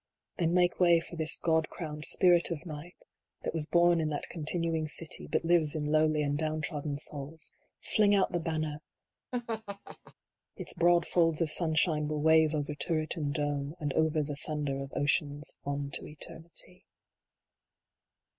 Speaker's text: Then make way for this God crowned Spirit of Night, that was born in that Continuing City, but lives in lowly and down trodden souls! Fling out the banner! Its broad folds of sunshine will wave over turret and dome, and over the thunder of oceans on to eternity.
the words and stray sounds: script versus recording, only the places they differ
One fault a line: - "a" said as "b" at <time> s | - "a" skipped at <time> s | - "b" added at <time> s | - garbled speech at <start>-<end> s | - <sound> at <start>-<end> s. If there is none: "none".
- laugh at 9.3-10.1 s